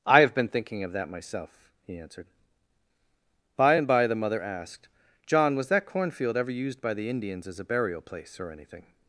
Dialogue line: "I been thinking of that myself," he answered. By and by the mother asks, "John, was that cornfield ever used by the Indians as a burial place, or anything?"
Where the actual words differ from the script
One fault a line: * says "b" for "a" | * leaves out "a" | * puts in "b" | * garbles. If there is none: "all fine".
* puts in "have"
* says "asked" for "asks"